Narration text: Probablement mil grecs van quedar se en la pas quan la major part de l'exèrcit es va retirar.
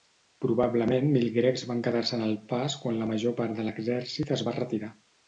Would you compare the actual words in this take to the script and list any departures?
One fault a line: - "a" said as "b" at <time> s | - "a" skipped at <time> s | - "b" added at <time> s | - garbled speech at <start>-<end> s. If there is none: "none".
- "la" said as "el" at 2.3 s